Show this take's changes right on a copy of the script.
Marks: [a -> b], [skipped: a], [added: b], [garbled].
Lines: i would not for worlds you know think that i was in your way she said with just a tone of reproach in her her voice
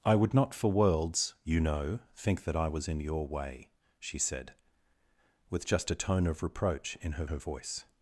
i would not for worlds you know think that i was in your way she said with just a tone of reproach in her her voice